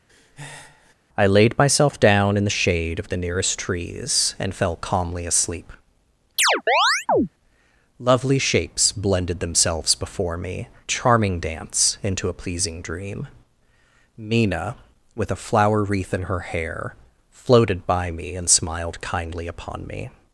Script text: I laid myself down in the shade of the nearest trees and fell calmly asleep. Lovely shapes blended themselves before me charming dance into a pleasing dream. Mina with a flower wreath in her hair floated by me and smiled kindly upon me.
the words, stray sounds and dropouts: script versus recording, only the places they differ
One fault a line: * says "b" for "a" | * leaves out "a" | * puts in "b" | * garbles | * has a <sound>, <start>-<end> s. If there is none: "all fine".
* has a breath, 0.1-0.9 s
* has a chirp, 6.4-7.3 s